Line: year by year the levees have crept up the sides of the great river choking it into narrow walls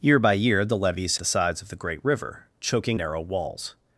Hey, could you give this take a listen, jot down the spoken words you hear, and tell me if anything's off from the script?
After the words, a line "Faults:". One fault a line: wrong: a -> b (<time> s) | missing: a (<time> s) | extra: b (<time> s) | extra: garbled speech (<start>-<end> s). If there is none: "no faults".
year by year the levees the sides of the great river choking narrow walls
Faults:
missing: have crept up (1.2 s)
missing: it into (3.0 s)